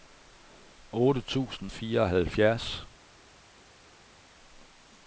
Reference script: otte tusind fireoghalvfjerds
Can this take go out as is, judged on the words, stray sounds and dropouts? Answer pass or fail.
pass